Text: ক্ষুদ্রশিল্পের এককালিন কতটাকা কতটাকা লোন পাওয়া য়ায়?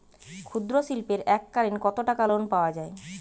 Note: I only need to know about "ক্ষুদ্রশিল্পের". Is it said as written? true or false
true